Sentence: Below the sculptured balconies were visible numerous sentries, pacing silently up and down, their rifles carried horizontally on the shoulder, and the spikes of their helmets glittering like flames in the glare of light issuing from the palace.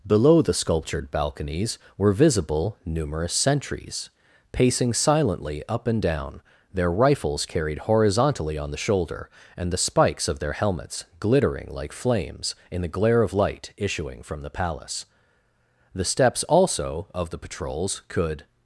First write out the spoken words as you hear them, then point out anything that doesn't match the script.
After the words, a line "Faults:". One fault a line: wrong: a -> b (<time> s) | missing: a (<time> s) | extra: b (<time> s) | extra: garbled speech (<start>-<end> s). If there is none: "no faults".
Below the sculptured balconies were visible numerous sentries, pacing silently up and down, their rifles carried horizontally on the shoulder, and the spikes of their helmets glittering like flames in the glare of light issuing from the palace. The steps also of the patrols could
Faults:
extra: The steps also of the patrols could (15.9 s)